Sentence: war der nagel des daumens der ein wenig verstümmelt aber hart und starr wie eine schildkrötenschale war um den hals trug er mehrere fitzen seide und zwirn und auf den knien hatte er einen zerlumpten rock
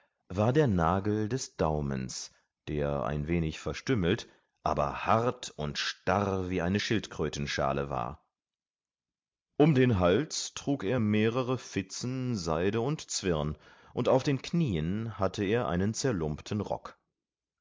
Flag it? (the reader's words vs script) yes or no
no